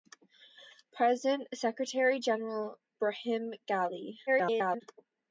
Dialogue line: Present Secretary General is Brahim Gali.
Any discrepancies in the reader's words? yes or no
yes